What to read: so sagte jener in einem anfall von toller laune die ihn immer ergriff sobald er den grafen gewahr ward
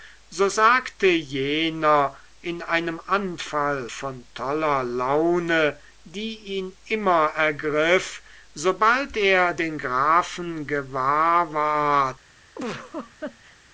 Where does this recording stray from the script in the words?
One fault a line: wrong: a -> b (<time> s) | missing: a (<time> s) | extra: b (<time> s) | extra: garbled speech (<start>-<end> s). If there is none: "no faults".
no faults